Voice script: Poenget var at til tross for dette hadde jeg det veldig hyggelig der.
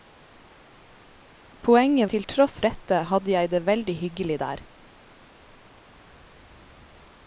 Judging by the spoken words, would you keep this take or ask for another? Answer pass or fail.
fail